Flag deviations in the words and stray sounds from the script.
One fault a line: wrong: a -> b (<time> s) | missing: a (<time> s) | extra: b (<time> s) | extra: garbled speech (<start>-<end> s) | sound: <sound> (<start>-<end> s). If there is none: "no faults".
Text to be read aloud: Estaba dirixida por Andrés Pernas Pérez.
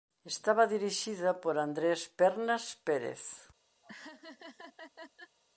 sound: laugh (3.8-5.4 s)